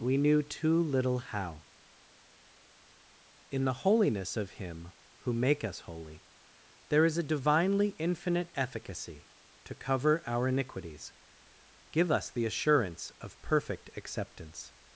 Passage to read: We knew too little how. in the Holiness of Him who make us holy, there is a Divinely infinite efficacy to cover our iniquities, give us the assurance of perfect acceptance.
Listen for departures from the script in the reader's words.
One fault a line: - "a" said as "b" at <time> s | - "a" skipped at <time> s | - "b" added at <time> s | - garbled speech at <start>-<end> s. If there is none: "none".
none